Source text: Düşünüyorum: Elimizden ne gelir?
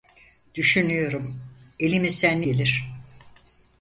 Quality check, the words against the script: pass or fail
pass